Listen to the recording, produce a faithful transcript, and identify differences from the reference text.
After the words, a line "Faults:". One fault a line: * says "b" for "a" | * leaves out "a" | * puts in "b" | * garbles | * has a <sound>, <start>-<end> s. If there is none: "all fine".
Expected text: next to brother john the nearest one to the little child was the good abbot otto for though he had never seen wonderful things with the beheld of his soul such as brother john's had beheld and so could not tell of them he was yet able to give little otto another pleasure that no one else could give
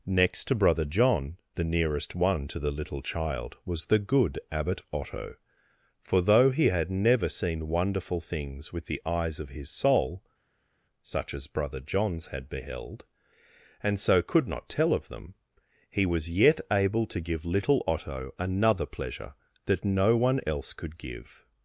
next to brother john the nearest one to the little child was the good abbot otto for though he had never seen wonderful things with the eyes of his soul such as brother john's had beheld and so could not tell of them he was yet able to give little otto another pleasure that no one else could give
Faults:
* says "eyes" for "beheld"